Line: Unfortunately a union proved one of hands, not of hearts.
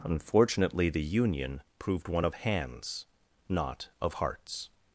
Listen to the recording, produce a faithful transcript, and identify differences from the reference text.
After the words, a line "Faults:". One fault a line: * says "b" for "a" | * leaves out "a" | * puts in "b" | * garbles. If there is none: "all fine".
Unfortunately the union proved one of hands, not of hearts.
Faults:
* says "the" for "a"